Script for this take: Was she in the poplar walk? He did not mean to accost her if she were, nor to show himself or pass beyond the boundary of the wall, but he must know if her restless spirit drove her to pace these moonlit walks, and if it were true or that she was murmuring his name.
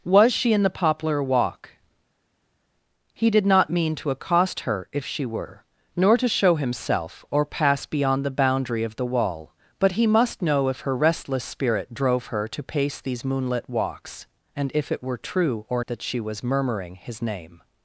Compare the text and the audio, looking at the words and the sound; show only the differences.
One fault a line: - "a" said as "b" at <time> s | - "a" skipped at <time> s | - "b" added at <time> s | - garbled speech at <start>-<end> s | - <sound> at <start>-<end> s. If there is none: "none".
none